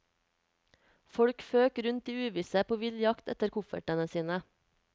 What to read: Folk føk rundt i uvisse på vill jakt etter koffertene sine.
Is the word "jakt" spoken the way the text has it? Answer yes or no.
yes